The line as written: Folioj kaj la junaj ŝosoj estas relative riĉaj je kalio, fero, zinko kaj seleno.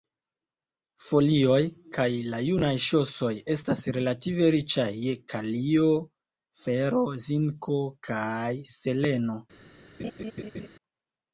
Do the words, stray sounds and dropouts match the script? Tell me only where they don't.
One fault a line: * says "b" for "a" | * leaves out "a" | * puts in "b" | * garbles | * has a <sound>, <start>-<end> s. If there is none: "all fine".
* has a laugh, 10.0-10.7 s